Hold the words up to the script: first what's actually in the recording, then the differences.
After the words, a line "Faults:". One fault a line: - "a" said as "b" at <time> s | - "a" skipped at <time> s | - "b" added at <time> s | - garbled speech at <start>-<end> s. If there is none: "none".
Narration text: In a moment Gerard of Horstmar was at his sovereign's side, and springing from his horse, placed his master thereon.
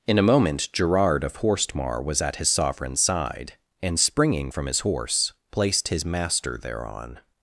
In a moment Gerard of Horstmar was at his sovereign's side, and springing from his horse, placed his master thereon.
Faults:
none